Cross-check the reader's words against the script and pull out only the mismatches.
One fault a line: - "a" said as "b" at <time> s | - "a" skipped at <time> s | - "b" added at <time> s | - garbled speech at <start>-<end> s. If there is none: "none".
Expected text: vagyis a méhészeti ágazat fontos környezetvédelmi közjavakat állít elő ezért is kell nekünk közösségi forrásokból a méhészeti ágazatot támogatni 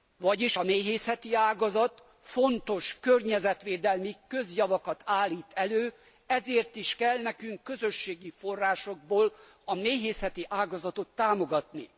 none